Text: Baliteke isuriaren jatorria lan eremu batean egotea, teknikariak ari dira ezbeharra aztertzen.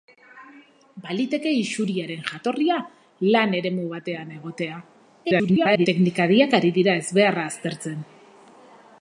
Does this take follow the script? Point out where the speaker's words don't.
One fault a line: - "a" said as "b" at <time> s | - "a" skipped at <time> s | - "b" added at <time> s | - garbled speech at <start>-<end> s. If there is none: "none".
- garbled speech at 5.2-5.9 s